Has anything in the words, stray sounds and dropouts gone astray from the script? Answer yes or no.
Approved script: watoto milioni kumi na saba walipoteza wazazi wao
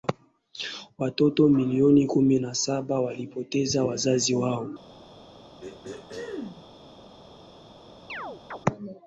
yes